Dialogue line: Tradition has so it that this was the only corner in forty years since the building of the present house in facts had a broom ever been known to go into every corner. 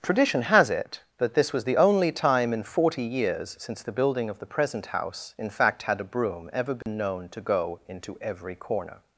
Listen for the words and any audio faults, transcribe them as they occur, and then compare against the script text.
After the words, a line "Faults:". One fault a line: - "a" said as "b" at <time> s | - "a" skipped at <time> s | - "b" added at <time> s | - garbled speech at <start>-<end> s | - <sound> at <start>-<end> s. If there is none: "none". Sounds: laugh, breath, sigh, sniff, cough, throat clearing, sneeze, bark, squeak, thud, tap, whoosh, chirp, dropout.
Tradition has it that this was the only time in forty years since the building of the present house in fact had a broom ever been known to go into every corner.
Faults:
- "so" skipped at 0.7 s
- "corner" said as "time" at 2.1 s
- "facts" said as "fact" at 5.5 s
- dropout at 6.8-6.9 s